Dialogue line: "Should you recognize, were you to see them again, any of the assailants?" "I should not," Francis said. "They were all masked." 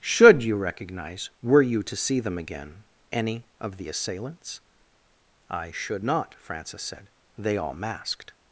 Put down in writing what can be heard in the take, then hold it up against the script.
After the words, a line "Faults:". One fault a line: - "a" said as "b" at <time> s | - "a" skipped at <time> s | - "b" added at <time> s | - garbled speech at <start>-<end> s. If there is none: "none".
"Should you recognize, were you to see them again, any of the assailants?" "I should not," Francis said. "They all masked."
Faults:
- "were" skipped at 7.6 s